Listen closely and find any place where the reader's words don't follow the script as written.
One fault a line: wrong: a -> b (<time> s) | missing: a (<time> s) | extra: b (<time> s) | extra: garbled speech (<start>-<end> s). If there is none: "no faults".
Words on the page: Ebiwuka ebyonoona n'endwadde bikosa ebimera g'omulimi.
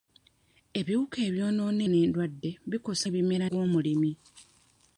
no faults